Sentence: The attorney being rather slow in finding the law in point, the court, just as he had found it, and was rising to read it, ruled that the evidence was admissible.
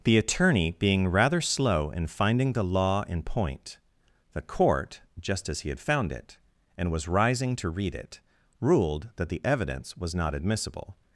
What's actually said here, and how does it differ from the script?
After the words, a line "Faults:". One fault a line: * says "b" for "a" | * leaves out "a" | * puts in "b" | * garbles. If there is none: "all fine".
The attorney being rather slow in finding the law in point, the court, just as he had found it, and was rising to read it, ruled that the evidence was not admissible.
Faults:
* puts in "not"